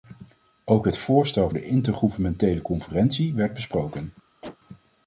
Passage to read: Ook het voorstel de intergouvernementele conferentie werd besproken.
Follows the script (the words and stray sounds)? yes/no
no